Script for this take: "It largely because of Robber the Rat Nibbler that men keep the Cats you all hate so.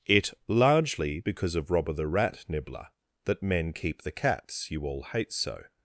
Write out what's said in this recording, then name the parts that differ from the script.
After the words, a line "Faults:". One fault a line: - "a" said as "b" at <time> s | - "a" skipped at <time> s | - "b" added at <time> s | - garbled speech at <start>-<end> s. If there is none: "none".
"It largely because of Robber the Rat Nibbler that men keep the Cats you all hate so.
Faults:
none